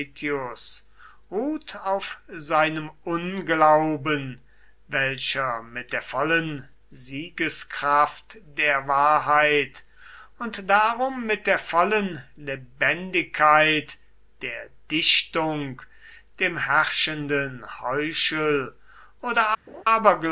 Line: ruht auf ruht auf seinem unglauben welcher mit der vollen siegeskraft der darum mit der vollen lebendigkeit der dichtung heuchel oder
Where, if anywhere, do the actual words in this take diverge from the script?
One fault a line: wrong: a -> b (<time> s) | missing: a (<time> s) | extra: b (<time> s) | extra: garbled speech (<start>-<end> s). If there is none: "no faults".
missing: ruht auf (2.2 s)
extra: wahrheit und (8.9 s)
extra: dem herrschenden (16.4 s)